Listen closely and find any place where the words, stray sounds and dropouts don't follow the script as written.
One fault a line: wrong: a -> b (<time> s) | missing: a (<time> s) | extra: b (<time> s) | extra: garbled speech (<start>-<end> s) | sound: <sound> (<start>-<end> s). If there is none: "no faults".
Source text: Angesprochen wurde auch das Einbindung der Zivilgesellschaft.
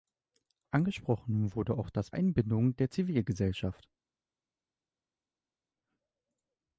no faults